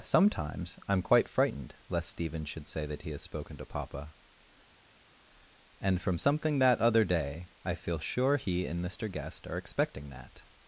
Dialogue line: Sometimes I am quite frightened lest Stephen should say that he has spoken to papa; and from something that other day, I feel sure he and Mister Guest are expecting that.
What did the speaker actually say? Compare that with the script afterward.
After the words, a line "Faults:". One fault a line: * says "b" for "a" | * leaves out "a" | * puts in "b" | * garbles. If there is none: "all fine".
Sometimes I am quite frightened lest Stephen should say that he has spoken to papa; and from something that other day, I feel sure he and Mister Guest are expecting that.
Faults:
all fine